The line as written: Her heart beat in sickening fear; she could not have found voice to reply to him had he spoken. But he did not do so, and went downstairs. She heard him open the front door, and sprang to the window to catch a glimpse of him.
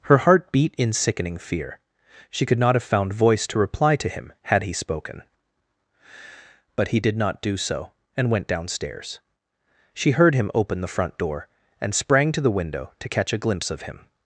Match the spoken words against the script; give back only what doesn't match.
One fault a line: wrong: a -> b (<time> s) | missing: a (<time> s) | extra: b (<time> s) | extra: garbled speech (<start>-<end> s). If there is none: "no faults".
no faults